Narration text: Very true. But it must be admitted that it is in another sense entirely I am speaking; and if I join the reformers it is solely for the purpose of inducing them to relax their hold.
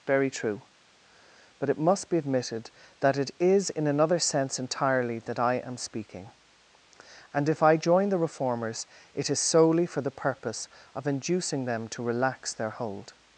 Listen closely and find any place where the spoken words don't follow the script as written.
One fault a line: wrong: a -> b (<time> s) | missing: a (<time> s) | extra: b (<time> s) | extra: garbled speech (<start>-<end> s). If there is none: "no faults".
extra: that (5.2 s)